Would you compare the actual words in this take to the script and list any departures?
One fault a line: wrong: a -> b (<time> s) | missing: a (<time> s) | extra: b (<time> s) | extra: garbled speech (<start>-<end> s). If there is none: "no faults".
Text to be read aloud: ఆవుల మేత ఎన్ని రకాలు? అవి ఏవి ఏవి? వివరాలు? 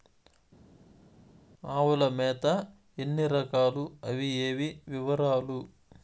missing: ఏవి (4.8 s)